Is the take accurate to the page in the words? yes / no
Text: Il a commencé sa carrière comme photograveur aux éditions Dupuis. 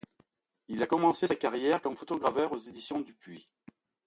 yes